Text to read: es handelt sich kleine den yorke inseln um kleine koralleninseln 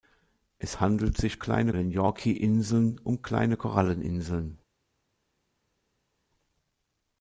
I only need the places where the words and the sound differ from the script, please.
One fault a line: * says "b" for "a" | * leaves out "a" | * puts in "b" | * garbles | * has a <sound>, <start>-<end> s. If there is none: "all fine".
all fine